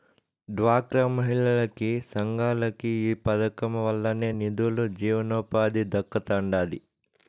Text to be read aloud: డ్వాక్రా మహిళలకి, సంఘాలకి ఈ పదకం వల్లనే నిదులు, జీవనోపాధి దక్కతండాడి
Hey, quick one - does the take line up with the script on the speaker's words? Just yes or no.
yes